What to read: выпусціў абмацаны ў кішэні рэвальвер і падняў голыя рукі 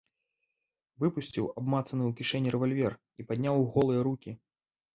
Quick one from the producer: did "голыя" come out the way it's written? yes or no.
yes